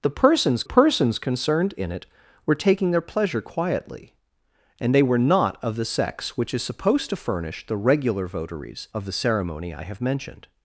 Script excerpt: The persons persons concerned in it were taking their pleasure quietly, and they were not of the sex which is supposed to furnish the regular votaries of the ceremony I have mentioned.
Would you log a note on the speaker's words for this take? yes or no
no